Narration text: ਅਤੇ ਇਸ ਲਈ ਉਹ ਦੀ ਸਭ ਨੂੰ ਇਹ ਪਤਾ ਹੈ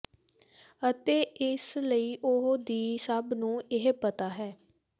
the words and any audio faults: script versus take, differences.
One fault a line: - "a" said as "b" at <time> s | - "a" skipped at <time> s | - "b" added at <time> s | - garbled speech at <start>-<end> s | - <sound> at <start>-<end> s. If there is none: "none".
none